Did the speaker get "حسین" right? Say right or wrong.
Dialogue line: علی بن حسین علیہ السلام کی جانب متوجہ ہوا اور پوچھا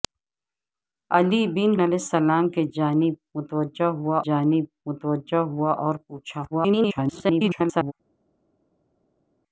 wrong